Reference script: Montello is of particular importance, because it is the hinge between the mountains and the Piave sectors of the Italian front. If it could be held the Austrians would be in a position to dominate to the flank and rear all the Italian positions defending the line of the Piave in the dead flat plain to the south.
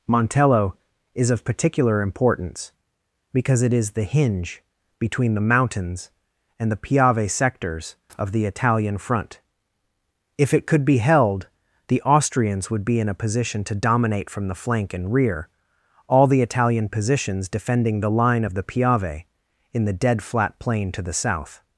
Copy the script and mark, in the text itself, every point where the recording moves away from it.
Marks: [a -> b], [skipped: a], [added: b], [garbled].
Montello is of particular importance, because it is the hinge between the mountains and the Piave sectors of the Italian front. If it could be held the Austrians would be in a position to dominate [to -> from] the flank and rear all the Italian positions defending the line of the Piave in the dead flat plain to the south.